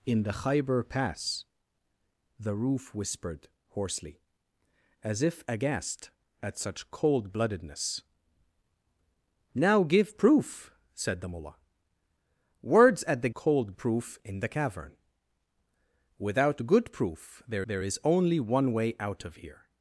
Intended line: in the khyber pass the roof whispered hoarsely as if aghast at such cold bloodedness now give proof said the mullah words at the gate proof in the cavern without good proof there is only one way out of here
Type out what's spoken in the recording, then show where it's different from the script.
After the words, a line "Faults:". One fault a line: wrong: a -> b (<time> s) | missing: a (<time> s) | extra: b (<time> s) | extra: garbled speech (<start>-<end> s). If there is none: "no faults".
in the khyber pass the roof whispered hoarsely as if aghast at such cold bloodedness now give proof said the mullah words at the cold proof in the cavern without good proof there there is only one way out of here
Faults:
wrong: gate -> cold (13.3 s)
extra: there (17.6 s)